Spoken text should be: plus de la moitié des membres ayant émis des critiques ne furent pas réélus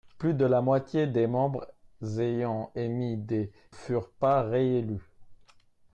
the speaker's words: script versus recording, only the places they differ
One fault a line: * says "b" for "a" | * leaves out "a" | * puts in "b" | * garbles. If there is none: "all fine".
* leaves out "critiques ne"